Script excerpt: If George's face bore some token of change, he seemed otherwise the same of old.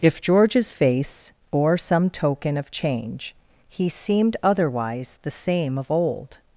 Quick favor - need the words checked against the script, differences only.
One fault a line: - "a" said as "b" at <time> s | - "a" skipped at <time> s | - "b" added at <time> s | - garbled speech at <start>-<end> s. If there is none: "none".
none